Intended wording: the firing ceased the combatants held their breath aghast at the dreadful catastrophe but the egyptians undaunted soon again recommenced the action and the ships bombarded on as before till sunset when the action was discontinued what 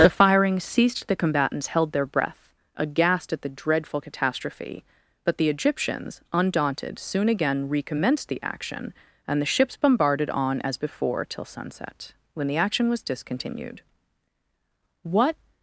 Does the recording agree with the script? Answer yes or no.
yes